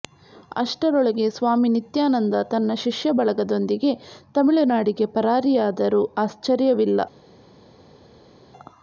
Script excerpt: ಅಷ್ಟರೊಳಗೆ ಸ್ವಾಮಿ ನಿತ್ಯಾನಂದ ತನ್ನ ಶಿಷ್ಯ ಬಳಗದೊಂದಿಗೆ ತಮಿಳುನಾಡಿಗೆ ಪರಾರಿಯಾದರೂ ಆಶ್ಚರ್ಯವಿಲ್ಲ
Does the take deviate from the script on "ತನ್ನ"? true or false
false